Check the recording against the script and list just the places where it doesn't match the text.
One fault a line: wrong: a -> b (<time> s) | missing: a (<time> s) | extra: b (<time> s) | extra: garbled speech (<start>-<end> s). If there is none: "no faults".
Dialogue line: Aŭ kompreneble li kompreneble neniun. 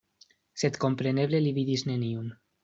wrong: Aŭ -> Sed (0.6 s)
wrong: kompreneble -> vidis (1.6 s)